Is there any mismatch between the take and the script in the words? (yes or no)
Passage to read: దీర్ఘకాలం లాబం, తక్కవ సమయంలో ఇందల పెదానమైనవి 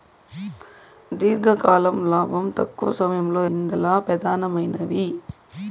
no